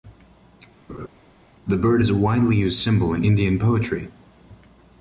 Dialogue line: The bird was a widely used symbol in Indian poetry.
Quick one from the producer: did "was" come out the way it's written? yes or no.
no